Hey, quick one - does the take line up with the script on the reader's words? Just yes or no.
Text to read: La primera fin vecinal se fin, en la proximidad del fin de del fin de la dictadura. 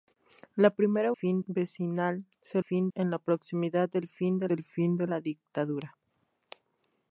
yes